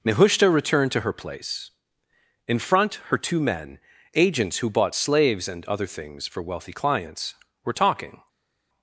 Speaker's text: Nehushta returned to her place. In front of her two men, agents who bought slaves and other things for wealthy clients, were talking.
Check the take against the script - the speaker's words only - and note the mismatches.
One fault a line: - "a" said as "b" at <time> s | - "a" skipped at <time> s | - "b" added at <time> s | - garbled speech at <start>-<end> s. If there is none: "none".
- "of" skipped at 3.0 s